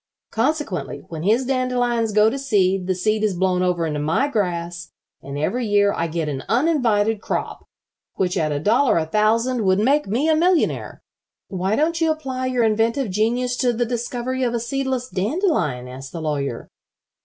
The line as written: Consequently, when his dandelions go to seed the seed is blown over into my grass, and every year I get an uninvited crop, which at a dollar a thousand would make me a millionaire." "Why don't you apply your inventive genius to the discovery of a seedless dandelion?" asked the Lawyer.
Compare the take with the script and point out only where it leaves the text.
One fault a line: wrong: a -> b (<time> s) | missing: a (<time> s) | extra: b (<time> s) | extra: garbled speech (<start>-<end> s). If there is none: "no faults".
no faults